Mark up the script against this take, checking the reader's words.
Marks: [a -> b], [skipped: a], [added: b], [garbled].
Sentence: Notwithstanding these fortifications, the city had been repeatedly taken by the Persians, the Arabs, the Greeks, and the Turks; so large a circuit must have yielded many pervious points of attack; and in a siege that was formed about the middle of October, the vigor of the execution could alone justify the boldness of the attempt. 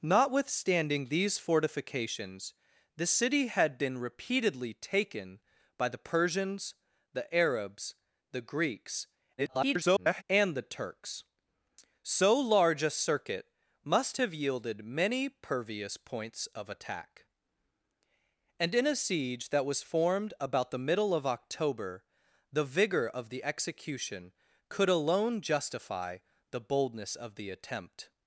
Notwithstanding these fortifications, the city had been repeatedly taken by the Persians, the Arabs, the Greeks, [garbled] and the Turks; so large a circuit must have yielded many pervious points of attack; and in a siege that was formed about the middle of October, the vigor of the execution could alone justify the boldness of the attempt.